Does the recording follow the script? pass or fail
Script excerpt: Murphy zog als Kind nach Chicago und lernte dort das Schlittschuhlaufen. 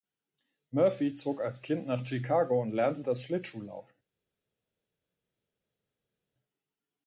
fail